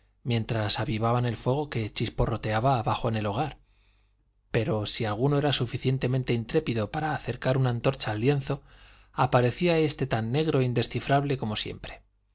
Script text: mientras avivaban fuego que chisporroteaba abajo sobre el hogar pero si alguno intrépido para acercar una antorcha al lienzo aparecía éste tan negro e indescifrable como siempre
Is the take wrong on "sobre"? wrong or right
wrong